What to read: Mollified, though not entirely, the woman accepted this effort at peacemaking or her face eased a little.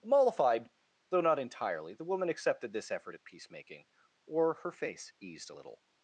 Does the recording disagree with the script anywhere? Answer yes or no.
no